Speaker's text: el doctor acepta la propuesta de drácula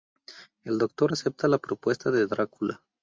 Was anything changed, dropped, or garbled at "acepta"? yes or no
no